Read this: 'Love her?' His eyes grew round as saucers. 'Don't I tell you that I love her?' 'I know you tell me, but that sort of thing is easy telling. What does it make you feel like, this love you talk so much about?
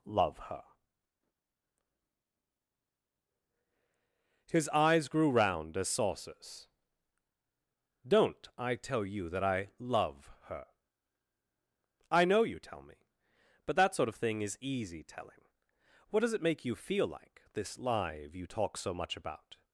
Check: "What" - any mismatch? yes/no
no